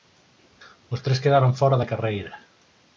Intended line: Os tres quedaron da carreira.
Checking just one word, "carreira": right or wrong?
right